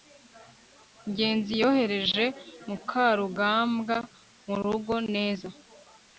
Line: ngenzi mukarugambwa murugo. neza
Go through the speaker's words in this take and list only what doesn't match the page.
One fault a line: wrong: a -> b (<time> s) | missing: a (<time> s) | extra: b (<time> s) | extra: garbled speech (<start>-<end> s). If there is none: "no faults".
extra: yohereje (1.6 s)